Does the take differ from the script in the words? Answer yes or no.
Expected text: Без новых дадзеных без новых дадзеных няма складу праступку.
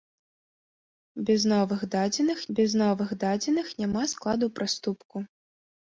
no